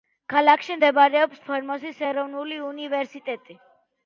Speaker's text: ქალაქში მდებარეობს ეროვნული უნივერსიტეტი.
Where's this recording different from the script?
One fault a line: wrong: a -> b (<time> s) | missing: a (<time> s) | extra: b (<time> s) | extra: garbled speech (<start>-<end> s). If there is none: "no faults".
extra: ფორმოსის (1.5 s)